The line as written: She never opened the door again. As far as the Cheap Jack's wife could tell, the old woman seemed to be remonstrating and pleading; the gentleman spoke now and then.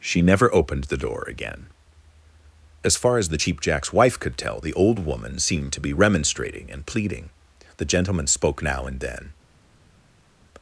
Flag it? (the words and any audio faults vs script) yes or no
no